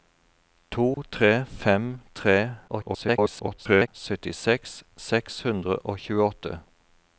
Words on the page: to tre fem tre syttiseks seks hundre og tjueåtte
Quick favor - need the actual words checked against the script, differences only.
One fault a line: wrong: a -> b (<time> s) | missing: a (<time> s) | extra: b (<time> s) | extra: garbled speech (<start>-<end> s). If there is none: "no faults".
extra: garbled speech (2.7-3.9 s)